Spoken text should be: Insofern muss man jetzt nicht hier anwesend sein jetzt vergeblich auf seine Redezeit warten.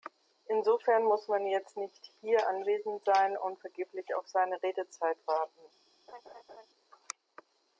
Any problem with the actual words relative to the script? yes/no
yes